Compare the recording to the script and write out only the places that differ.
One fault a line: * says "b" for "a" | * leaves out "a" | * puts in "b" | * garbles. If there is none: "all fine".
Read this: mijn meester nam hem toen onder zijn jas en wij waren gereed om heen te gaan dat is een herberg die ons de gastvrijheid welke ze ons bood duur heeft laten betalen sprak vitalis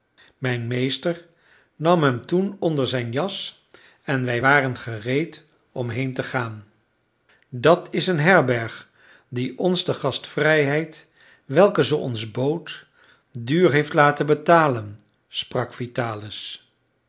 all fine